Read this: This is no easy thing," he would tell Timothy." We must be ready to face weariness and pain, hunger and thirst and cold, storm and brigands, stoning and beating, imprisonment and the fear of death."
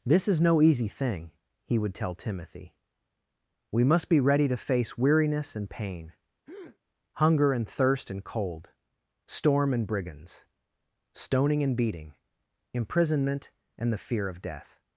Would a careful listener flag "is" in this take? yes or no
no